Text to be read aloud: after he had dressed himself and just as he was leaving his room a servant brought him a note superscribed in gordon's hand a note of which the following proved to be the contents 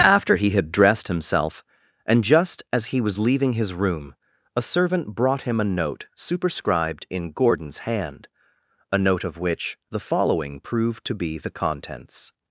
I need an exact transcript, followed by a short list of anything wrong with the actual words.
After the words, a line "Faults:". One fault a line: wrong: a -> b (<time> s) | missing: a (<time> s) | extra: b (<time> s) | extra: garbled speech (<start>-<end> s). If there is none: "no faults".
after he had dressed himself and just as he was leaving his room a servant brought him a note superscribed in gordon's hand a note of which the following proved to be the contents
Faults:
no faults